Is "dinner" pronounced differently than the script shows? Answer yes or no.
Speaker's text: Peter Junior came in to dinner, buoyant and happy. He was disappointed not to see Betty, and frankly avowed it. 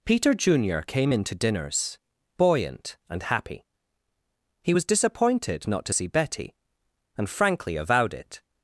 yes